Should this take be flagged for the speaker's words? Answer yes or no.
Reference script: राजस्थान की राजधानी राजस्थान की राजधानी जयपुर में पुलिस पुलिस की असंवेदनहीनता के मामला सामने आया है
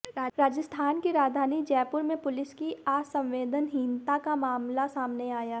yes